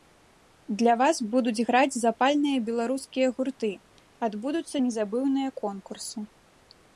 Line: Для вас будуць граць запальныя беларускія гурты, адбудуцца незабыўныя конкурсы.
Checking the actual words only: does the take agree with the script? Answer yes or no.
yes